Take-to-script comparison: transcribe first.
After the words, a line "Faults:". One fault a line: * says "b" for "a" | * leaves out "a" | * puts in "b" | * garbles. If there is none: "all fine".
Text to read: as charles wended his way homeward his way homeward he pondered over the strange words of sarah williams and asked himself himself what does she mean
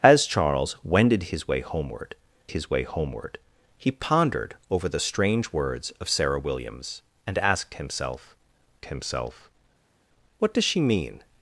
as charles wended his way homeward his way homeward he pondered over the strange words of sarah williams and asked himself himself what does she mean
Faults:
all fine